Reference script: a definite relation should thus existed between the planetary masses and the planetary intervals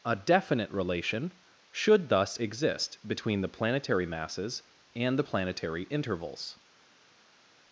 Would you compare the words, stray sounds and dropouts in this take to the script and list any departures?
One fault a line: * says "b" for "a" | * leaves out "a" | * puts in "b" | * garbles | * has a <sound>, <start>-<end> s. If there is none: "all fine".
* says "exist" for "existed"